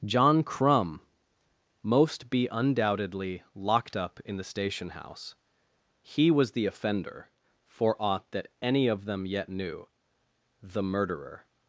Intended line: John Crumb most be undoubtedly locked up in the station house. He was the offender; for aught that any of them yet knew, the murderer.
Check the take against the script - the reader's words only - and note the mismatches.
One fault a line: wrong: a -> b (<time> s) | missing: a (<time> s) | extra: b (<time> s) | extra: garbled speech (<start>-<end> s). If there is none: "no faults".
no faults